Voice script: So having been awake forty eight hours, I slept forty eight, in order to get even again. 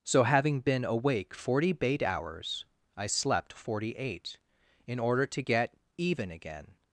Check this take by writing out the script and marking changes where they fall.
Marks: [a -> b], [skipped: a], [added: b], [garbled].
So having been awake forty [eight -> bait] hours, I slept forty eight, in order to get even again.